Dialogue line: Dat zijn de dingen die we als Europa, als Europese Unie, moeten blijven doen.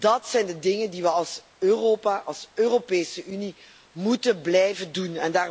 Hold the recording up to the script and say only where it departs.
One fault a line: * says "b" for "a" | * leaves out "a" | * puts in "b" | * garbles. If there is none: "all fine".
all fine